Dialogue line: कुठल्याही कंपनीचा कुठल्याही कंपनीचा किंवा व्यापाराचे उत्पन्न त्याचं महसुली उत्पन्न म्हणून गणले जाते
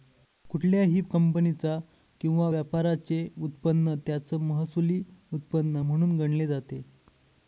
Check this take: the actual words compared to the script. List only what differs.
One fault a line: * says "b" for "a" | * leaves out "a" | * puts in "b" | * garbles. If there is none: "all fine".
* leaves out "कुठल्याही कंपनीचा"